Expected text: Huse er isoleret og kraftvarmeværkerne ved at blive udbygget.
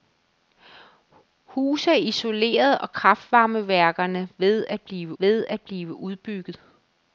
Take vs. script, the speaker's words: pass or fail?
fail